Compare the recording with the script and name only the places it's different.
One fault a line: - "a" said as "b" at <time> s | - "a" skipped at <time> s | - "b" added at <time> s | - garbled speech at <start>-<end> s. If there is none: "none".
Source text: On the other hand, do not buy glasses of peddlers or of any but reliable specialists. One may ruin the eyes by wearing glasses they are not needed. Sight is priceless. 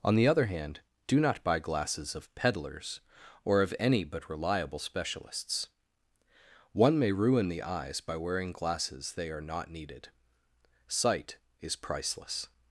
none